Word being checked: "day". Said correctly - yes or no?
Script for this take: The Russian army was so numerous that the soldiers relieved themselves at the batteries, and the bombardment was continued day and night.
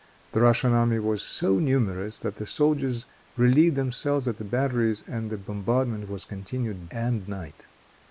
no